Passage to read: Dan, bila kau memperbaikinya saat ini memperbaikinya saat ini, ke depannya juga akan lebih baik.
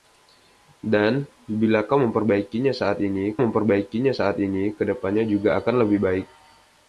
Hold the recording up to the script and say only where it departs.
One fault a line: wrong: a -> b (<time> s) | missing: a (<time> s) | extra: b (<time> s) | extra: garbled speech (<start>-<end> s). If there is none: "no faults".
no faults